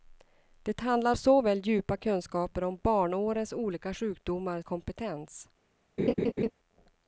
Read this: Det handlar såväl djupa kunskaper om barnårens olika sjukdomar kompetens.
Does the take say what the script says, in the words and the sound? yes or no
no